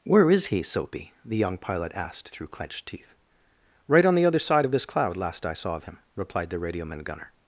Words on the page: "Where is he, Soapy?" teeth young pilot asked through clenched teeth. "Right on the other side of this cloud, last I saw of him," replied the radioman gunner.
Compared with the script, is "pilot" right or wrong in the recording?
right